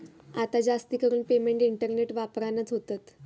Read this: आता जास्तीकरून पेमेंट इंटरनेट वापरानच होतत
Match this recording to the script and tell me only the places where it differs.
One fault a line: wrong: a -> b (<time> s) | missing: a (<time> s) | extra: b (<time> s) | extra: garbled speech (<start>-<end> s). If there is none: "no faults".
no faults